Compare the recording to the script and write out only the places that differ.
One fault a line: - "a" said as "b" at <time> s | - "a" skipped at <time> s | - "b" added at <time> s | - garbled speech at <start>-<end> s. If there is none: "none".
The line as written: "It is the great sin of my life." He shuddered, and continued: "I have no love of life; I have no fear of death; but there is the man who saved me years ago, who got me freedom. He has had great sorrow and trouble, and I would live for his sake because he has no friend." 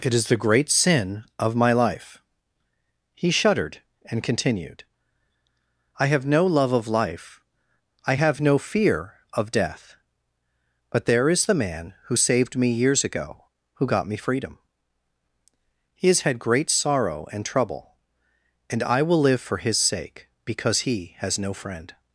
- "would" said as "will" at 19.0 s